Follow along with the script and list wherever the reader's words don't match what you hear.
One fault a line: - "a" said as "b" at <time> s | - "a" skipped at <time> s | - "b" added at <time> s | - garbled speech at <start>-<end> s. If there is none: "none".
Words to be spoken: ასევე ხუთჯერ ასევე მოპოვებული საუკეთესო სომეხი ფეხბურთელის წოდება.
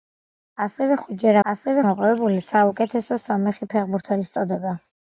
none